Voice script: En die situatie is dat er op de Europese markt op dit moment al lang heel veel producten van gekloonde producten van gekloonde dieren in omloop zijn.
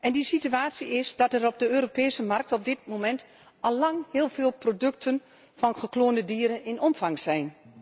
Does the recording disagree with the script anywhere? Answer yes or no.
yes